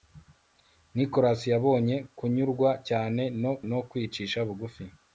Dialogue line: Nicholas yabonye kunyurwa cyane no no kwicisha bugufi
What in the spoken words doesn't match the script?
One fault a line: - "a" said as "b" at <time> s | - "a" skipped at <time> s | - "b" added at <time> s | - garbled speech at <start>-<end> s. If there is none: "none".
none